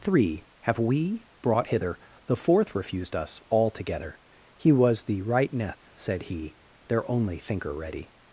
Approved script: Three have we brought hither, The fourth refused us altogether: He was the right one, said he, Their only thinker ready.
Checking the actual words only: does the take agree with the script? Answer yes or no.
no